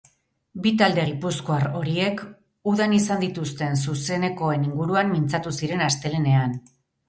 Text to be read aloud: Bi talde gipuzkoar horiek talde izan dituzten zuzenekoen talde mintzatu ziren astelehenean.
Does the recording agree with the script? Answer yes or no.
no